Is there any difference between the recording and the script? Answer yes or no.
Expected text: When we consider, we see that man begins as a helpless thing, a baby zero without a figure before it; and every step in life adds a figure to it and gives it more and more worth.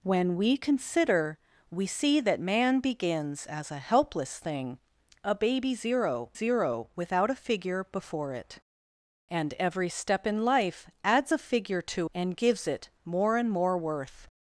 yes